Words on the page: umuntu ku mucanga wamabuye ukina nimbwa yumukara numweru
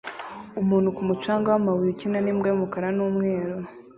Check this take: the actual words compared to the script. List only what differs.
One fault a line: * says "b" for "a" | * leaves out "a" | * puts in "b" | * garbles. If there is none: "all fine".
all fine